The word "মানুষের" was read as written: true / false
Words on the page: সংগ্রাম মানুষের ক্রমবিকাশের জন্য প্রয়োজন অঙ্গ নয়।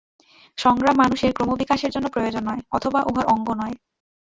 true